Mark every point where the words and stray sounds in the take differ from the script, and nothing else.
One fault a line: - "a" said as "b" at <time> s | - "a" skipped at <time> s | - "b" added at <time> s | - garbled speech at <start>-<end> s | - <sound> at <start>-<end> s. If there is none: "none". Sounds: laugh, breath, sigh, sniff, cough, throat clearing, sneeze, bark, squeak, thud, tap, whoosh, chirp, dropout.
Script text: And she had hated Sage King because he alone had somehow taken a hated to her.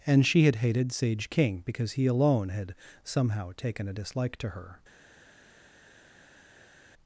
- "hated" said as "dislike" at 3.9 s